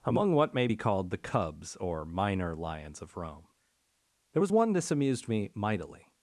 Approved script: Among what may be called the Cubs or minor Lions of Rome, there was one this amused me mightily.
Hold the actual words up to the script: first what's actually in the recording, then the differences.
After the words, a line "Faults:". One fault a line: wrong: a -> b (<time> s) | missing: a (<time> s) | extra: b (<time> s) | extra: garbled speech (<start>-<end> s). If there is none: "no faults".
Among what may be called the Cubs or minor Lions of Rome, there was one this amused me mightily.
Faults:
no faults